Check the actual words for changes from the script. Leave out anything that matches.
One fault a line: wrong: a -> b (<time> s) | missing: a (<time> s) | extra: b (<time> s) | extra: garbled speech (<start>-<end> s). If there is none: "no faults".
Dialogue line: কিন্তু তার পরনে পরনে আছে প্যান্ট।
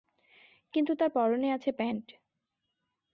missing: পরনে (1.5 s)